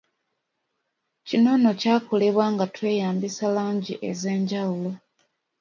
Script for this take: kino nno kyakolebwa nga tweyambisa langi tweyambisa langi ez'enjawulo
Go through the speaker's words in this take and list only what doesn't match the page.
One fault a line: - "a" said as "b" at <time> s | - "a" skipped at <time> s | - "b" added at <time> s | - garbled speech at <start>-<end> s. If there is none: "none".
- "tweyambisa langi" skipped at 3.9 s